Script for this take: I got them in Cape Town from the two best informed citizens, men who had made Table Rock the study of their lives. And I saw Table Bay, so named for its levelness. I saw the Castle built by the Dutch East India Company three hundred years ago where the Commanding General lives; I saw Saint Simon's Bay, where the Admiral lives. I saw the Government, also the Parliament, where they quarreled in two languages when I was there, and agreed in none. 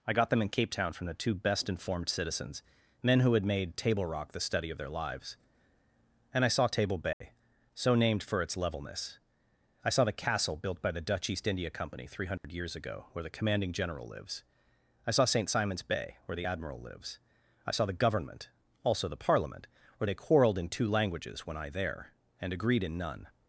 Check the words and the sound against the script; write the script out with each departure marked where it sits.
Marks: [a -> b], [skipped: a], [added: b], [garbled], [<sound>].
I got them in Cape Town from the two best informed citizens, men who had made Table Rock the study of their lives. And I saw Table Bay, [dropout] so named for its levelness. I saw the Castle built by the Dutch East India Company three hundred [dropout] years ago where the Commanding General lives; I saw Saint Simon's Bay, where the Admiral lives. I saw the Government, also the Parliament, where they quarreled in two languages when I [skipped: was] there, and agreed in none.